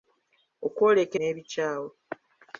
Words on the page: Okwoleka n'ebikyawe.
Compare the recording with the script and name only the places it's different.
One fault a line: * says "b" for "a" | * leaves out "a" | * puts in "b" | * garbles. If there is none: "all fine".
all fine